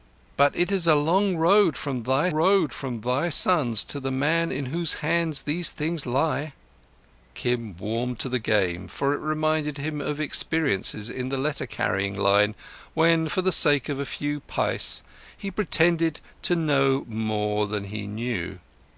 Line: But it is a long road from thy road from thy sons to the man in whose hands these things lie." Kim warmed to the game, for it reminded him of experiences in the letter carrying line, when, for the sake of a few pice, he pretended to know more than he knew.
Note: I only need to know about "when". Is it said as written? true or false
true